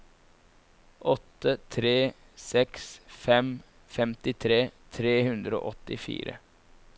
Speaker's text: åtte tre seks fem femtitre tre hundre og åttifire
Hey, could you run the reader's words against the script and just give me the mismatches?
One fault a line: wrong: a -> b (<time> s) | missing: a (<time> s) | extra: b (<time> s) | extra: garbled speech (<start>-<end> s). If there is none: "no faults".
no faults